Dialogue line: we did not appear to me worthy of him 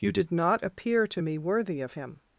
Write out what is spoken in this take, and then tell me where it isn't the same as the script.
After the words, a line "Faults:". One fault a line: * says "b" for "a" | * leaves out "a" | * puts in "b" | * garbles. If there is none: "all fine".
you did not appear to me worthy of him
Faults:
* says "you" for "we"